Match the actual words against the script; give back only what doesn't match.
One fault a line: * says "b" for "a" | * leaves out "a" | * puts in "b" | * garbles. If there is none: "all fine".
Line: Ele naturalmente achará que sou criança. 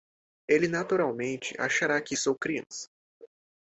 all fine